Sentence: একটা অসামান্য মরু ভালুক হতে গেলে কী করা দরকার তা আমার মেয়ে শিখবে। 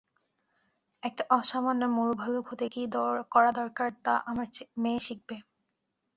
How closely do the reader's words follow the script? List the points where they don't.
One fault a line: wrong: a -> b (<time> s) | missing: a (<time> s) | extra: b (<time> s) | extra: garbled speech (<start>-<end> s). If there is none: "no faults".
missing: গেলে (2.6 s)